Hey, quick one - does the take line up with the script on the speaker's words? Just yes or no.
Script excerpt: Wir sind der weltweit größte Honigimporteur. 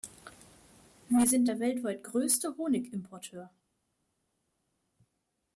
yes